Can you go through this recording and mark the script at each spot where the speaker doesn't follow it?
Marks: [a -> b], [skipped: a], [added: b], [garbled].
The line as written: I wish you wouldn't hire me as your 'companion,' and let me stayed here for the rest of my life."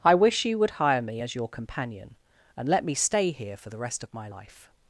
I wish you [wouldn't -> would] hire me as your 'companion,' and let me [stayed -> stay] here for the rest of my life."